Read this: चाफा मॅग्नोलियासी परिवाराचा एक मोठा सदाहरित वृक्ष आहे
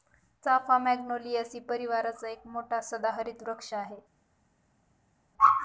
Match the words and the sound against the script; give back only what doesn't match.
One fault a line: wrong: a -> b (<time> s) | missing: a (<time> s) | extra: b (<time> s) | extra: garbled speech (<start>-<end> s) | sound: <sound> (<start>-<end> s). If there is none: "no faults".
no faults